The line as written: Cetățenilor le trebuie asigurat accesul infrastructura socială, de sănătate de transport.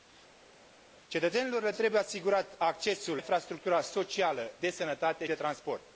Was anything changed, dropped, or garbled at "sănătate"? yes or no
no